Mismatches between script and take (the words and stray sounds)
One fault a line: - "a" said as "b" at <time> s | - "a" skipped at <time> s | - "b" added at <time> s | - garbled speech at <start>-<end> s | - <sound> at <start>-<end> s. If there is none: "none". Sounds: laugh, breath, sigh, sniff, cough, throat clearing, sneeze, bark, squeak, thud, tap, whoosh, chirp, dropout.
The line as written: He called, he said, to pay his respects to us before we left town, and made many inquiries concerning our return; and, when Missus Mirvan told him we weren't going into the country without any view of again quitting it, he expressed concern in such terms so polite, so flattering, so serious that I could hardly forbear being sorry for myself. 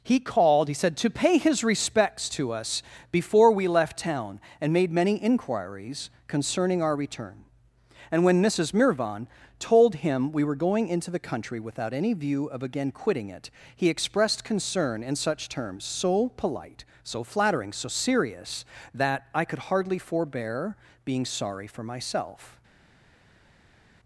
- "weren't" said as "were" at 10.4 s